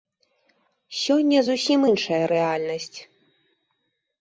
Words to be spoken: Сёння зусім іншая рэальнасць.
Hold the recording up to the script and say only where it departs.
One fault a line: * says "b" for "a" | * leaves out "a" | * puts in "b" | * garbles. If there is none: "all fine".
all fine